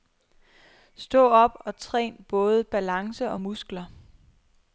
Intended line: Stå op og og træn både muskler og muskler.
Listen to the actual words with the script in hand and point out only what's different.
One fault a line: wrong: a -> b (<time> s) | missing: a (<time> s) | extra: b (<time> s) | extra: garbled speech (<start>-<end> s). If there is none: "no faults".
missing: og (1.8 s)
wrong: muskler -> balance (2.6 s)